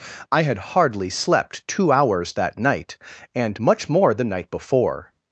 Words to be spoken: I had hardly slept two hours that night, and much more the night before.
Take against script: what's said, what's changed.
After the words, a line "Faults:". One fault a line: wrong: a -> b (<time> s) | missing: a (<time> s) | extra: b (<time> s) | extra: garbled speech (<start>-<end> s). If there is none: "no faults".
I had hardly slept two hours that night, and much more the night before.
Faults:
no faults